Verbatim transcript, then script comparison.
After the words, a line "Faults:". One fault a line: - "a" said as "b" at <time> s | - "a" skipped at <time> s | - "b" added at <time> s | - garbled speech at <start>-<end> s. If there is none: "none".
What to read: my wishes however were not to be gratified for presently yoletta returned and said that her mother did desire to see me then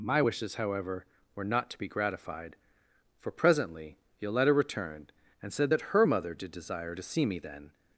my wishes however were not to be gratified for presently yoletta returned and said that her mother did desire to see me then
Faults:
none